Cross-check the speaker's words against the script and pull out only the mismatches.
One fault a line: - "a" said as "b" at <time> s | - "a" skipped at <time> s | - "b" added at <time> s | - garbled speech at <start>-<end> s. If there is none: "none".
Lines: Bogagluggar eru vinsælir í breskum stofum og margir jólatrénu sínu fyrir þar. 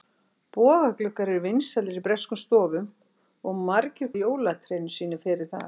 none